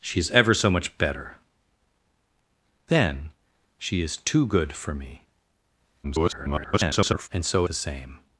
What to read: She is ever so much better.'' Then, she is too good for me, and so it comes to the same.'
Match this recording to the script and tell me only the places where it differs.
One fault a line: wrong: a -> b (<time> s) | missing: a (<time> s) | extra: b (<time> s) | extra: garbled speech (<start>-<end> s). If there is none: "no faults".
extra: garbled speech (6.0-7.3 s)
missing: it comes to (7.7 s)